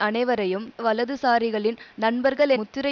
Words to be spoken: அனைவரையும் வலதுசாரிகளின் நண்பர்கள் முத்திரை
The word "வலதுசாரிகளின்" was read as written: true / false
true